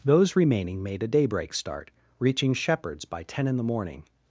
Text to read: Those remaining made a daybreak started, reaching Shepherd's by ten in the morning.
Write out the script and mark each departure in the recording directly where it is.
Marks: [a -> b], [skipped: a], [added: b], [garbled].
Those remaining made a daybreak [started, -> start] reaching Shepherd's by ten in the morning.